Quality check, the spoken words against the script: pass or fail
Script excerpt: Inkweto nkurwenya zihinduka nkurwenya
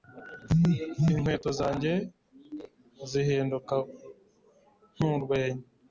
fail